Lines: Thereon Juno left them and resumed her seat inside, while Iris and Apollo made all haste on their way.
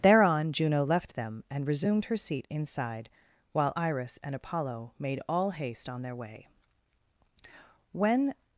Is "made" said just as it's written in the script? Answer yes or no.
yes